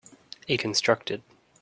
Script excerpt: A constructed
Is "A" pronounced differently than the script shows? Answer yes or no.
no